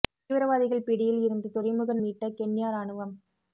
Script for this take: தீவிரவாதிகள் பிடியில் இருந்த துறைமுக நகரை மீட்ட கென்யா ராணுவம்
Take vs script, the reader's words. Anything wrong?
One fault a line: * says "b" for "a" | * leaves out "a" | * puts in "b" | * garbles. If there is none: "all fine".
* leaves out "நகரை"